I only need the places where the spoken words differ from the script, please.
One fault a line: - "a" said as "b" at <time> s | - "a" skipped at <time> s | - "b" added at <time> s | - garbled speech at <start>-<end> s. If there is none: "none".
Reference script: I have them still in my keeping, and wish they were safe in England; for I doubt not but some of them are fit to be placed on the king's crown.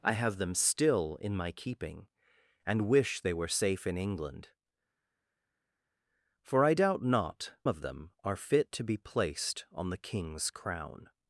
- "but some" skipped at 7.5 s